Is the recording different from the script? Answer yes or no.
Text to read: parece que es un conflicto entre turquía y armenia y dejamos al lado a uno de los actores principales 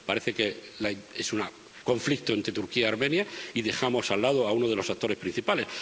no